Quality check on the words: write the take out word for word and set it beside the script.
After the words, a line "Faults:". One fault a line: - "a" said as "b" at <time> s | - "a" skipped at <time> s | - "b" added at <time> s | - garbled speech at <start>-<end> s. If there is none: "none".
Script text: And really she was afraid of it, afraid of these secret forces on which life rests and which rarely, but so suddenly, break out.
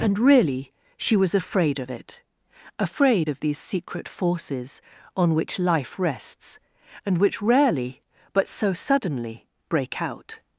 And really she was afraid of it, afraid of these secret forces on which life rests and which rarely, but so suddenly, break out.
Faults:
none